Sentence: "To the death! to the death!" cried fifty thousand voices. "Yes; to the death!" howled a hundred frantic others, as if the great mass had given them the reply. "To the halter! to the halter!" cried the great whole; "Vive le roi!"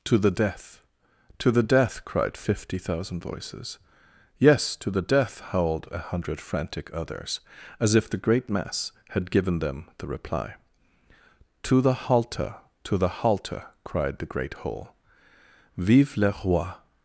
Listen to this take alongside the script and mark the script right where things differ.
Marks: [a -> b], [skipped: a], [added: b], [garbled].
"To the death! to the death!" cried fifty thousand voices. "Yes; to the death!" howled a hundred frantic others, as if the great mass had given them the reply. "To the halter! to the halter!" cried the great whole; "Vive le roi!"